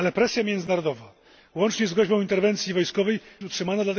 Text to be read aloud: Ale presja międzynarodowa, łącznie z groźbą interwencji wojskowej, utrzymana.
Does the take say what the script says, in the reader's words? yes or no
yes